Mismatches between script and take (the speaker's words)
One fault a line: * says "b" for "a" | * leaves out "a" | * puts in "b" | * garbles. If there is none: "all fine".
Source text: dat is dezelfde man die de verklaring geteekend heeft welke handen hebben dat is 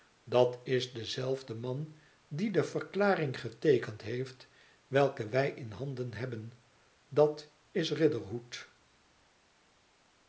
* puts in "wij in"